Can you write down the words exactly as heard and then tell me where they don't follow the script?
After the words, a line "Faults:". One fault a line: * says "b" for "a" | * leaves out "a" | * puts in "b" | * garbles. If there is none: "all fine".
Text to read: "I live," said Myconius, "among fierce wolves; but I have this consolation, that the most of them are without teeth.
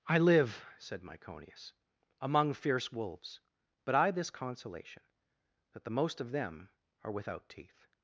"I live," said Myconius, "among fierce wolves; but I this consolation, that the most of them are without teeth.
Faults:
* leaves out "have"